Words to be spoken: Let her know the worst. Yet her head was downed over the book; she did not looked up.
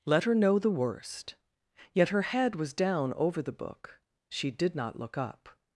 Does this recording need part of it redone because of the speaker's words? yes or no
yes